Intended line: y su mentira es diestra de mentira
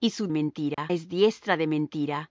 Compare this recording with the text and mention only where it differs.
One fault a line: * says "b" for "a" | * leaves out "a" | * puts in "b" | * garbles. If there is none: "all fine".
all fine